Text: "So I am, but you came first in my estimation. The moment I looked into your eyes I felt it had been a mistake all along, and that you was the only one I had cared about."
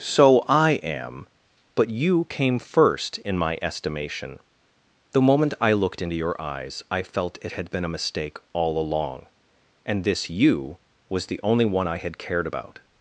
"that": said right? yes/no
no